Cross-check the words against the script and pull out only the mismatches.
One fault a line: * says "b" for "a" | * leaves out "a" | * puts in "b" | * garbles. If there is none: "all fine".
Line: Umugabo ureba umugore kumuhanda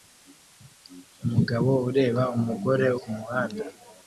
all fine